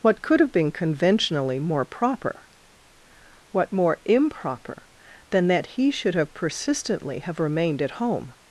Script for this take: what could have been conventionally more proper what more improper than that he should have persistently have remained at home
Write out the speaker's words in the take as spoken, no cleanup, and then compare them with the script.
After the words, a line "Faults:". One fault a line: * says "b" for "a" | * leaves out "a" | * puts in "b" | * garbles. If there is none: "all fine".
what could have been conventionally more proper what more improper than that he should have persistently have remained at home
Faults:
all fine